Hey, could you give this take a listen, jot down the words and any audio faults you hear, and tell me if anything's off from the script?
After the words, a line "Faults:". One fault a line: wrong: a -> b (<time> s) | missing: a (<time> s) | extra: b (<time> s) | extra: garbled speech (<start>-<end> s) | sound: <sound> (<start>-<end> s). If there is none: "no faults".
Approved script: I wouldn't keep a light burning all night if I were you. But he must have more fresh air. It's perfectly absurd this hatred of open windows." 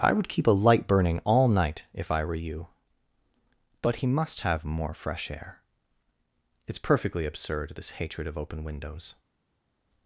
I would keep a light burning all night if I were you. But he must have more fresh air. It's perfectly absurd this hatred of open windows."
Faults:
wrong: wouldn't -> would (0.1 s)